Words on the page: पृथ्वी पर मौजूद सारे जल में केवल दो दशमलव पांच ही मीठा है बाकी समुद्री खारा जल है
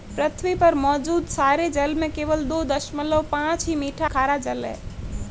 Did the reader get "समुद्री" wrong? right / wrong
wrong